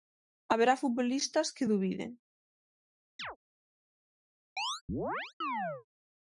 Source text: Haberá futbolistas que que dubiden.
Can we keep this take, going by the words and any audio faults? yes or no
no